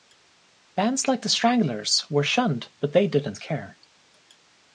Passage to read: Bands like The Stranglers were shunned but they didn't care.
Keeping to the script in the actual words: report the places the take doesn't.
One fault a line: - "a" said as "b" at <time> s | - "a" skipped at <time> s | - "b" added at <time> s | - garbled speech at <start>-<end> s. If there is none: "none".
none